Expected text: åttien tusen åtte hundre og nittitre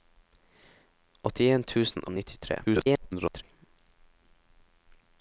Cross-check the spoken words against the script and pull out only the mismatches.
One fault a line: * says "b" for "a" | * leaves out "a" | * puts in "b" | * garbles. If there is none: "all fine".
* leaves out "åtte hundre"
* garbles